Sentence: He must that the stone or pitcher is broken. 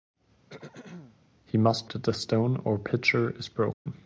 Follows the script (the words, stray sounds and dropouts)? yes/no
no